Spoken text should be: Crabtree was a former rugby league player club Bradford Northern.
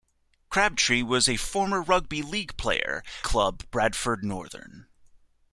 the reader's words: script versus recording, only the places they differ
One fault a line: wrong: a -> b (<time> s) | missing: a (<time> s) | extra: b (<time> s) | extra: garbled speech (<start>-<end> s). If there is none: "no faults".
no faults